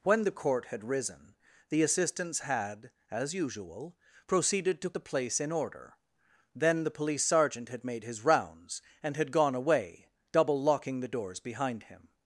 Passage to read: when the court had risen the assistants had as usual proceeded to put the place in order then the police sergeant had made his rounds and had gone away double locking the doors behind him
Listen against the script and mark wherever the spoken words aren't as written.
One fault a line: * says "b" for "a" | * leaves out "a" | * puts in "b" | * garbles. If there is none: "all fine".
* leaves out "put"